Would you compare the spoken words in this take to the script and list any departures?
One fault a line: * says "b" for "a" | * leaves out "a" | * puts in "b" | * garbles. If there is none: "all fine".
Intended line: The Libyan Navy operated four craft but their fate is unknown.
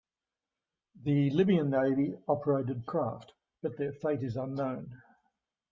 * leaves out "four"